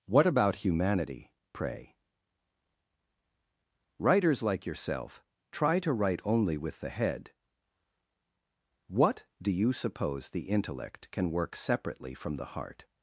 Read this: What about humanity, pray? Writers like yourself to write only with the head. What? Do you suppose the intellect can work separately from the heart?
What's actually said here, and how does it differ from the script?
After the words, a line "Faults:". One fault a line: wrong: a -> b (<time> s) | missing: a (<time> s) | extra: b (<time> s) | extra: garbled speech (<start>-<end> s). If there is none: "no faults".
What about humanity, pray? Writers like yourself try to write only with the head. What? Do you suppose the intellect can work separately from the heart?
Faults:
extra: try (5.5 s)